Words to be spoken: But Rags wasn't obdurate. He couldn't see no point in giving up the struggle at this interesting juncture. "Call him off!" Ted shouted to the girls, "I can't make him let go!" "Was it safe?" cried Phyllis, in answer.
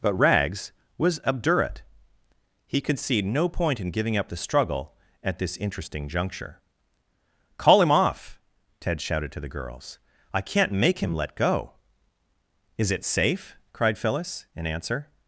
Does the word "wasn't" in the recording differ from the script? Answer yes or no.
yes